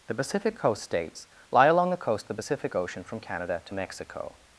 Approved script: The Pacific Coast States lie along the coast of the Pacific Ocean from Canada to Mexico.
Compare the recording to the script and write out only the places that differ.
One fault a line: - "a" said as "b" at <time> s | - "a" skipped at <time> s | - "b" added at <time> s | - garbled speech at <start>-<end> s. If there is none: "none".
none